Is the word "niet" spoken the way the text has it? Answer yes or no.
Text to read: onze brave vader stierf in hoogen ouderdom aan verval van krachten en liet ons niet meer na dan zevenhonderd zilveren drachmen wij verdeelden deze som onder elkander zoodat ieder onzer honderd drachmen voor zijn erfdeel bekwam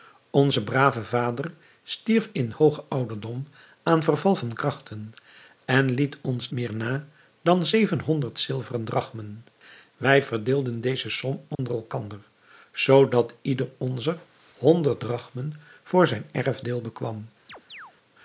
no